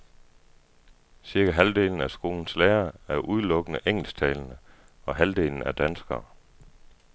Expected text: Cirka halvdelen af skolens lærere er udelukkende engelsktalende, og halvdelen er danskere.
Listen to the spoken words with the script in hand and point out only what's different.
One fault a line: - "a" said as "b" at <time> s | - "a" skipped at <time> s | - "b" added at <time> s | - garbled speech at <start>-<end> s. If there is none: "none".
none